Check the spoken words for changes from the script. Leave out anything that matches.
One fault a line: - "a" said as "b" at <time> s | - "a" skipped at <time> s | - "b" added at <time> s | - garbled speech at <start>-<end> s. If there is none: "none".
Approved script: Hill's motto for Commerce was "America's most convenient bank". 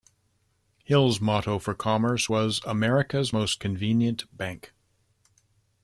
none